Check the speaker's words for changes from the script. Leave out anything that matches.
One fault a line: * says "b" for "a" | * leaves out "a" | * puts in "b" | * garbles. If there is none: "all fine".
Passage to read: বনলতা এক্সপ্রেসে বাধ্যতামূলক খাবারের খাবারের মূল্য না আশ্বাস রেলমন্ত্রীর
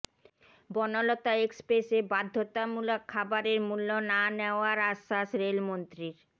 * leaves out "খাবারের"
* puts in "নেওয়ার"